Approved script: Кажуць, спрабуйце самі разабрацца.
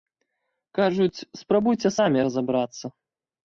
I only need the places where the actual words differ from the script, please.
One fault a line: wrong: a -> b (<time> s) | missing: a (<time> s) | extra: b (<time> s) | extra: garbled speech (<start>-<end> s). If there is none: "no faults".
no faults